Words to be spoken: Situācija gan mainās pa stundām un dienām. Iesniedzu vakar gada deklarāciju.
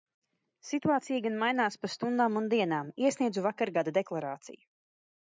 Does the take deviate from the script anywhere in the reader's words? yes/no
no